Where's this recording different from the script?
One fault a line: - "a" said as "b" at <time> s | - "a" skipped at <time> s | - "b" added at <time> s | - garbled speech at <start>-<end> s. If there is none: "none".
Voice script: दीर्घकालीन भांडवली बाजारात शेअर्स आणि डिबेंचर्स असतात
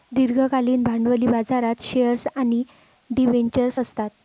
none